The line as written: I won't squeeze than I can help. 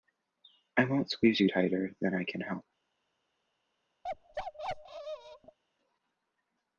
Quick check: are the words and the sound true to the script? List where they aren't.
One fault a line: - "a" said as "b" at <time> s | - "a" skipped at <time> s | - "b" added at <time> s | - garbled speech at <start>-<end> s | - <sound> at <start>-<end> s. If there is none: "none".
- "you tighter" added at 1.4 s
- bark at 4.0-5.6 s